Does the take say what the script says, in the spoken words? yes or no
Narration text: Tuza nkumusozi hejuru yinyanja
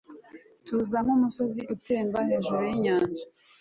no